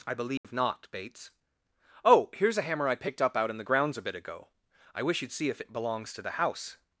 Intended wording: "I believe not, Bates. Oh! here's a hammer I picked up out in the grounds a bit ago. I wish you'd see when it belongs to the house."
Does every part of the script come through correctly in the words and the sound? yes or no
no